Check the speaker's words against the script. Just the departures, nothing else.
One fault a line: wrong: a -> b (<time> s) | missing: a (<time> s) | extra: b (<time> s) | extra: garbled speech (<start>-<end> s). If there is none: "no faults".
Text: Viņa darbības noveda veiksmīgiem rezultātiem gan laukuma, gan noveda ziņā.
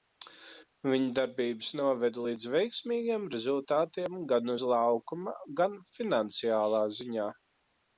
extra: līdz (2.3 s)
extra: uz (4.5 s)
wrong: noveda -> finansiālā (6.0 s)